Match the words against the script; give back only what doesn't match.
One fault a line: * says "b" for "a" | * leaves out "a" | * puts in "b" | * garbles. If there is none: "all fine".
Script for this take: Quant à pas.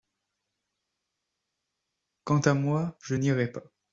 * puts in "moi je n'irai"